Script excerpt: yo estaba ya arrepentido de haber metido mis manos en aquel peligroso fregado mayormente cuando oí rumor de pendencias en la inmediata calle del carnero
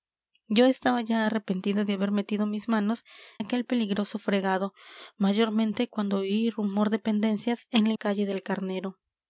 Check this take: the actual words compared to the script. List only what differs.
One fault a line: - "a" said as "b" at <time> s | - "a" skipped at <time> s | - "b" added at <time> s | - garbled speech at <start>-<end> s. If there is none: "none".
- "en" skipped at 3.0 s
- "inmediata" skipped at 7.9 s